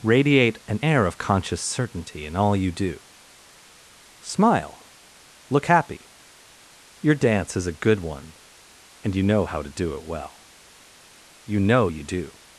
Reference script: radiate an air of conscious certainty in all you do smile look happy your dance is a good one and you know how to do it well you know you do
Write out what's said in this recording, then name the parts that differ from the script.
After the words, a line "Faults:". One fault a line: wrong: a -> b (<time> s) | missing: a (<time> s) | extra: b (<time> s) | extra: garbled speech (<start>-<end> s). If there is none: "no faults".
radiate an air of conscious certainty in all you do smile look happy your dance is a good one and you know how to do it well you know you do
Faults:
no faults